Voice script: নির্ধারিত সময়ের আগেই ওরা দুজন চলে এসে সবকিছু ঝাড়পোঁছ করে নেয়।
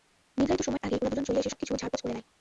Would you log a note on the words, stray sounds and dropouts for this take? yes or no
yes